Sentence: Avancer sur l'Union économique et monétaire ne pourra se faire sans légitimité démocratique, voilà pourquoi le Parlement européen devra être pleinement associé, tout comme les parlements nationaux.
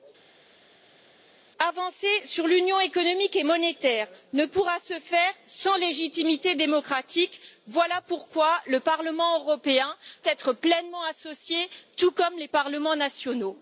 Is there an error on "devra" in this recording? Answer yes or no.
yes